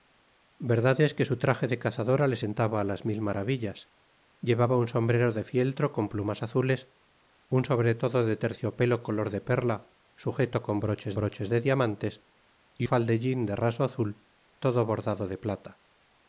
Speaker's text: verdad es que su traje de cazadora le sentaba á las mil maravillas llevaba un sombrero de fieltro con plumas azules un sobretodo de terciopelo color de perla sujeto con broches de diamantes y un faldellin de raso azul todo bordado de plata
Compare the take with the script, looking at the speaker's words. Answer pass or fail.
fail